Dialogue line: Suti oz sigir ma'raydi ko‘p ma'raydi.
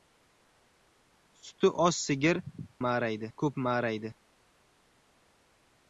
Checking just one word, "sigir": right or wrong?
right